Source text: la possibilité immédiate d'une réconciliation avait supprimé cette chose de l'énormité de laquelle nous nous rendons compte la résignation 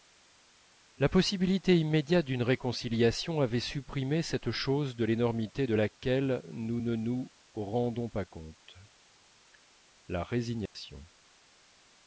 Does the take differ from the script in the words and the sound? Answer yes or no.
yes